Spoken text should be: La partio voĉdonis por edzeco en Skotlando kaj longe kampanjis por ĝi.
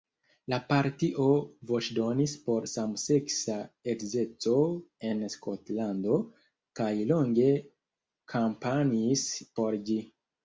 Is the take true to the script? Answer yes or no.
no